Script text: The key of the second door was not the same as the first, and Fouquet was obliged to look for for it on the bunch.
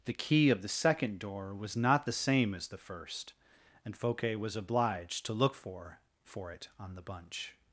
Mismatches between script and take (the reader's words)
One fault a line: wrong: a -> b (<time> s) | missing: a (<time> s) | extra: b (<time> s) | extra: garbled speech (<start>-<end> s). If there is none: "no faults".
no faults